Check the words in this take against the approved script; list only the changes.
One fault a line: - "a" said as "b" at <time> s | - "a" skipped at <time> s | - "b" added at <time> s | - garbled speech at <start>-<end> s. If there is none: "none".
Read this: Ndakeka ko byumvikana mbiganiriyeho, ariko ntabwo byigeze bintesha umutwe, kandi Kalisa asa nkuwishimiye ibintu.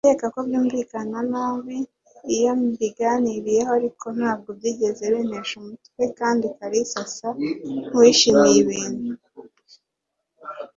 - "nabi iyo" added at 1.3 s